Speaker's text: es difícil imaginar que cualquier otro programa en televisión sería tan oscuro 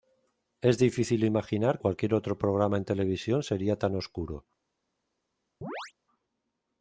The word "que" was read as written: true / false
false